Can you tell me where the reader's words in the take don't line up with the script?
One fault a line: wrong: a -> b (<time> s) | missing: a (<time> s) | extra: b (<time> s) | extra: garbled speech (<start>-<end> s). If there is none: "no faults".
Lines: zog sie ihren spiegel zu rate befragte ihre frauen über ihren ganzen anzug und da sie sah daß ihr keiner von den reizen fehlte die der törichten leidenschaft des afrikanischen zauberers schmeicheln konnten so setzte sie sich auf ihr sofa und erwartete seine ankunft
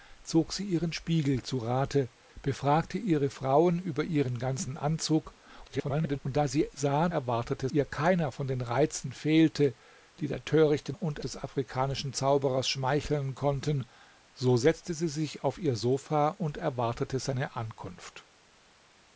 extra: garbled speech (5.7-6.2 s)
wrong: daß -> erwartete (7.1 s)
wrong: leidenschaft -> und (10.9 s)